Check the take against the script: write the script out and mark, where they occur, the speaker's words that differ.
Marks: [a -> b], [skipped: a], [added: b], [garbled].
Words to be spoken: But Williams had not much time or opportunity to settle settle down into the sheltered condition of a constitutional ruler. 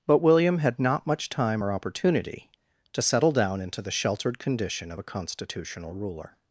But [Williams -> William] had not much time or opportunity to settle [skipped: settle] down into the sheltered condition of a constitutional ruler.